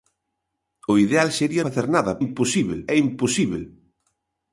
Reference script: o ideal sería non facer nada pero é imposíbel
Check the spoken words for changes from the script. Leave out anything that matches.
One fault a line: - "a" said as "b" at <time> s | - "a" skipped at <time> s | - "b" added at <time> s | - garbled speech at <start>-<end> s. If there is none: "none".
- "non" skipped at 1.6 s
- "pero" said as "imposíbel" at 2.2 s